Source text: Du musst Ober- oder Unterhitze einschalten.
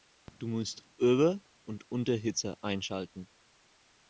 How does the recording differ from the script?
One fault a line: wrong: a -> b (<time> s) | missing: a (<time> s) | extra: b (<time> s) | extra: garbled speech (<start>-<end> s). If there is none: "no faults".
wrong: oder -> und (1.6 s)